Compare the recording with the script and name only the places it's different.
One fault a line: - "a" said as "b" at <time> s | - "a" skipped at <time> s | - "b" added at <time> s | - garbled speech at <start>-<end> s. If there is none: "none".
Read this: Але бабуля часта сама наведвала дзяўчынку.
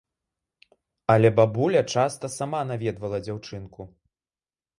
none